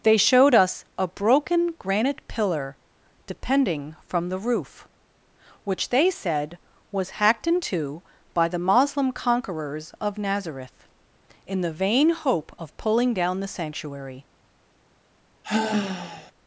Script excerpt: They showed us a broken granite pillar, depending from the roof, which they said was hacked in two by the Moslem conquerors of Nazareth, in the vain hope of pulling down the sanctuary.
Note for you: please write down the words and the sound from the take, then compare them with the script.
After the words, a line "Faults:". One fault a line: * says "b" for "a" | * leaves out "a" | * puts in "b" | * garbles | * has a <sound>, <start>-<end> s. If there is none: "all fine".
They showed us a broken granite pillar, depending from the roof, which they said was hacked in two by the Moslem conquerors of Nazareth, in the vain hope of pulling down the sanctuary.
Faults:
* has a sigh, 15.4-16.3 s